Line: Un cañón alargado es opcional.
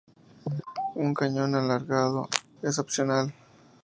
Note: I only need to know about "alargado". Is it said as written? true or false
true